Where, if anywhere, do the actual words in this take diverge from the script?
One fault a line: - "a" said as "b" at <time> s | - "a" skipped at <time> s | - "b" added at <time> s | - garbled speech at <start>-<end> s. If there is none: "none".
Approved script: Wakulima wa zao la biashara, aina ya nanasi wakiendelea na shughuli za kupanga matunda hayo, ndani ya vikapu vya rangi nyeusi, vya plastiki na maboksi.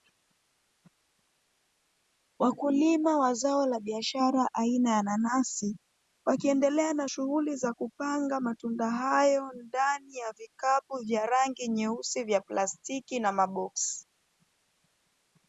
none